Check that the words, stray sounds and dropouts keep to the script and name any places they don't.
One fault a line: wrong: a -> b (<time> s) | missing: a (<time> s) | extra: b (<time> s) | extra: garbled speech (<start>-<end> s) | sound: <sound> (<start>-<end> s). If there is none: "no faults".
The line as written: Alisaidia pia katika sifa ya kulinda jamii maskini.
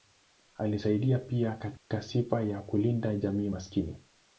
sound: dropout (1.8-1.9 s)